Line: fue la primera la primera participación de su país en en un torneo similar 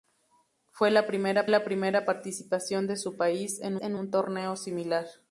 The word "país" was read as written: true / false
true